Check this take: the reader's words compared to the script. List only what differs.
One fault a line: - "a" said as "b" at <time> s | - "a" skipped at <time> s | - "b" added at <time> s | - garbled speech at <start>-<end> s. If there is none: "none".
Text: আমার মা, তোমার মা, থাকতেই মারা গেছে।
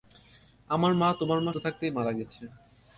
none